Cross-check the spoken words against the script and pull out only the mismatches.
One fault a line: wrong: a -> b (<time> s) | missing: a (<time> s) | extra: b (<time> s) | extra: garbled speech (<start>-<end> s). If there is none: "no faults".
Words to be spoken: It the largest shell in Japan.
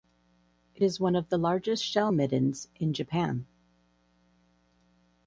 extra: is one of (0.8 s)
extra: middens (2.1 s)